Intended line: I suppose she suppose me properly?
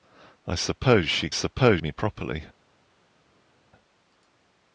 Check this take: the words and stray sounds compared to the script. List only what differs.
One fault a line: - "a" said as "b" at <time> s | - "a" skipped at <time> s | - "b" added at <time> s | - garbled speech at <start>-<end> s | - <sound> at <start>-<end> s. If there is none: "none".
none